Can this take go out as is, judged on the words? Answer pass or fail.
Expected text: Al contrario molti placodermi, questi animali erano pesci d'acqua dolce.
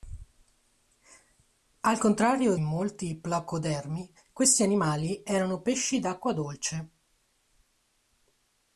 pass